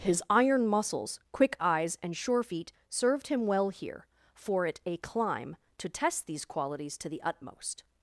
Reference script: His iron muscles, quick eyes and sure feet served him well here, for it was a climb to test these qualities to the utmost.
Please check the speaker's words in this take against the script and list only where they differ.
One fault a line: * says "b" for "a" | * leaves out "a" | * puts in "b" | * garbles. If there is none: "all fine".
* leaves out "was"